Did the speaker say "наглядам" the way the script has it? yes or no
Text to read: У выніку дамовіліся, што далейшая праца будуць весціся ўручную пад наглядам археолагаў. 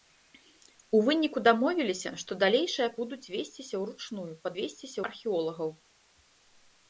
no